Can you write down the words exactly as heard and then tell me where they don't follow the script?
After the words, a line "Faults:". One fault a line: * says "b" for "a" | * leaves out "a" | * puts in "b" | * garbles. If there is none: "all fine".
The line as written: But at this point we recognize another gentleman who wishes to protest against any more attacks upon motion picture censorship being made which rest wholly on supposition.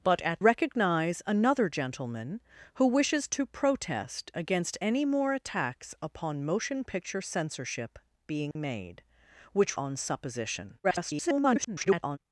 But at recognize another gentleman who wishes to protest against any more attacks upon motion picture censorship being made which on supposition. [garbled]
Faults:
* leaves out "this point we"
* leaves out "rest wholly"
* garbles